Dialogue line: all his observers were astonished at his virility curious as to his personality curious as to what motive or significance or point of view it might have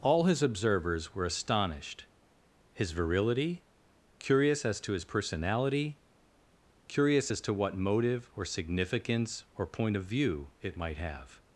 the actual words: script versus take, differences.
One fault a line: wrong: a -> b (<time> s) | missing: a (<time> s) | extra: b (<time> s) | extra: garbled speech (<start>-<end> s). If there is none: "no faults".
missing: at (2.1 s)